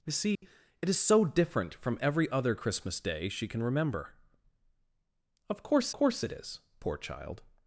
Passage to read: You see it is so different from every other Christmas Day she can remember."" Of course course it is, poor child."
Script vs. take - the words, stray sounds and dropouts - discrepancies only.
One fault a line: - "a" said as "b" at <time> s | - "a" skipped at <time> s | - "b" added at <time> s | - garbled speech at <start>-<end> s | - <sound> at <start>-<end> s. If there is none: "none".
- dropout at 0.4-0.4 s